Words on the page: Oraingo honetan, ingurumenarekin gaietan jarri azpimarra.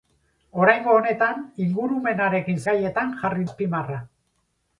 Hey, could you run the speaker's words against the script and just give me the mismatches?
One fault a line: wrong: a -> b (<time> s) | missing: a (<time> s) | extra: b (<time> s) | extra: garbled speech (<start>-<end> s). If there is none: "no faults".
no faults